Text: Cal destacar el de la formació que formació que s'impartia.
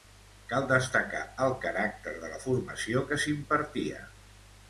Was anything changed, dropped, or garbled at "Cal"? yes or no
no